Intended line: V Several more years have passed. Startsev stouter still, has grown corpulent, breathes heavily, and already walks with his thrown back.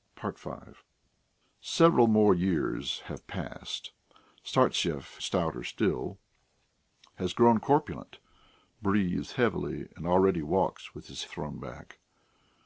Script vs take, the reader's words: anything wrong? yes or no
no